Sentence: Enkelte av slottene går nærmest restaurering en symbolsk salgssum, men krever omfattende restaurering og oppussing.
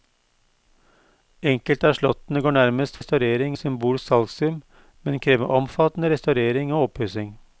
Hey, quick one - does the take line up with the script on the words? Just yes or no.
yes